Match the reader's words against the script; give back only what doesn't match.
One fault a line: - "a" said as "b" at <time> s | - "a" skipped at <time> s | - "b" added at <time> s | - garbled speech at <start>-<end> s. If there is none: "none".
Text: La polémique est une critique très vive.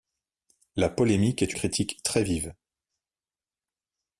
- "une" skipped at 1.5 s